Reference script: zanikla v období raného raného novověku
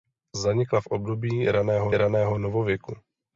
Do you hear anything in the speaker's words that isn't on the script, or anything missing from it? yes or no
no